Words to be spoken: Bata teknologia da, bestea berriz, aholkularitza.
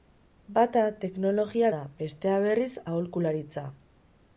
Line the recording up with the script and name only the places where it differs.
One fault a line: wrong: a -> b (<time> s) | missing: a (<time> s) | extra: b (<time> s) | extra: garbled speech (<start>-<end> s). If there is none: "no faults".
no faults